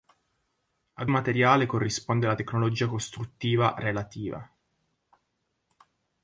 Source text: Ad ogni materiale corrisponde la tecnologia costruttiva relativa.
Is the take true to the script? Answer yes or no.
no